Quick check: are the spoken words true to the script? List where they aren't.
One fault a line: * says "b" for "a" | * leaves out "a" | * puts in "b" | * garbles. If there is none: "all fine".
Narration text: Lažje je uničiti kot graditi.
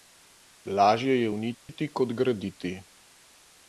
all fine